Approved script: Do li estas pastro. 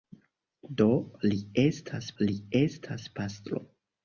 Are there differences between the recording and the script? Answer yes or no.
yes